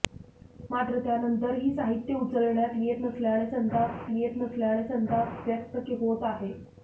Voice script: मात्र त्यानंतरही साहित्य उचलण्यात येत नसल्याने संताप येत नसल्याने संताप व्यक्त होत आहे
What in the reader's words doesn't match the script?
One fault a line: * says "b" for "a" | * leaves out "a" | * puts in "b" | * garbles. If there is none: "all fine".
all fine